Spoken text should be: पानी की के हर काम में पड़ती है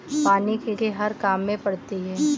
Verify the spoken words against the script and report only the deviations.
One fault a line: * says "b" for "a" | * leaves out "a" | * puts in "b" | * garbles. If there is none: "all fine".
all fine